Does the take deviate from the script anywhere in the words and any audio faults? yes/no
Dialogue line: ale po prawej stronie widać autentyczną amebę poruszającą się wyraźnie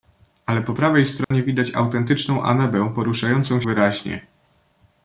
yes